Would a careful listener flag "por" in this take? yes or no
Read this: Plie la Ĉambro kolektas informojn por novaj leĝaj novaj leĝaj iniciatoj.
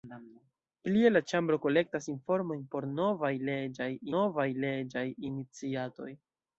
no